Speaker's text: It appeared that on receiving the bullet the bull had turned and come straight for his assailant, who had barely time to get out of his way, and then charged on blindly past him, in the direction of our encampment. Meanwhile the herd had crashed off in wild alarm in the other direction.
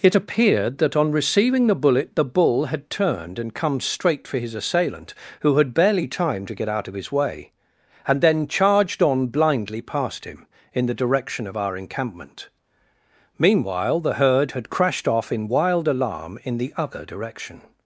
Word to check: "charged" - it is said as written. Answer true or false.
true